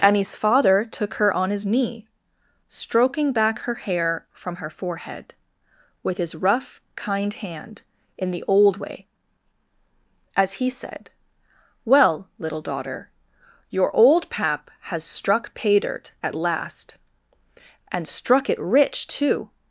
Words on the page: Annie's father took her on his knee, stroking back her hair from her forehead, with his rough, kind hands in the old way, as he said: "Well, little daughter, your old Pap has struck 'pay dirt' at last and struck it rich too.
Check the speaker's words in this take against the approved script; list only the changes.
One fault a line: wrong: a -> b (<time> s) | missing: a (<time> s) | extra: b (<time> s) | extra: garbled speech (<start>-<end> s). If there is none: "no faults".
wrong: hands -> hand (7.3 s)